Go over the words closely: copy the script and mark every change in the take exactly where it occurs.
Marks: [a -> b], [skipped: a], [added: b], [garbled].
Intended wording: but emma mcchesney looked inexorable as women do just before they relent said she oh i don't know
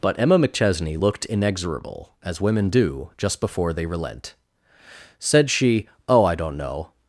but emma mcchesney looked inexorable as women do just before they relent said she oh i don't know